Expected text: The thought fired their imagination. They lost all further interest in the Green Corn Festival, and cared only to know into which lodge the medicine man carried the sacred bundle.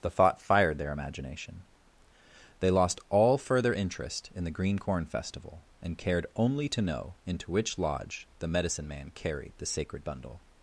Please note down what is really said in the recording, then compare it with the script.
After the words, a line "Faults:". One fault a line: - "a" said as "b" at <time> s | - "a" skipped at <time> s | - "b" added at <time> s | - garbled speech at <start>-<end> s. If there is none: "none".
The thought fired their imagination. They lost all further interest in the Green Corn Festival, and cared only to know into which lodge the medicine man carried the sacred bundle.
Faults:
none